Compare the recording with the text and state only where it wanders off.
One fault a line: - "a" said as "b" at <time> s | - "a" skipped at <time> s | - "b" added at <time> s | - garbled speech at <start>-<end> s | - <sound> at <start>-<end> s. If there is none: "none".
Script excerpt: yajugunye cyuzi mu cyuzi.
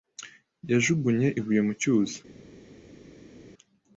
- "cyuzi" said as "ibuye" at 1.4 s